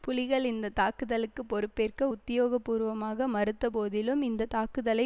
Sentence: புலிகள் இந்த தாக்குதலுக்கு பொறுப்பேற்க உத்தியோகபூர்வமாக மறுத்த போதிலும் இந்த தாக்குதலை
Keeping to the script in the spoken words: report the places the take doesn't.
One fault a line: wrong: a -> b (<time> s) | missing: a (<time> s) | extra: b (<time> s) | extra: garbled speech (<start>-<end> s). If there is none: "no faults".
no faults